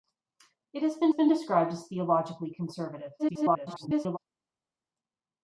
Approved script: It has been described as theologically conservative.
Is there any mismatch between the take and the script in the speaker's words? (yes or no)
yes